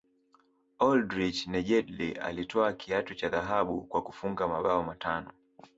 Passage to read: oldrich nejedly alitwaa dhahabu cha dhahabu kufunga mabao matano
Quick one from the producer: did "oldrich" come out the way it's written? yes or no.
yes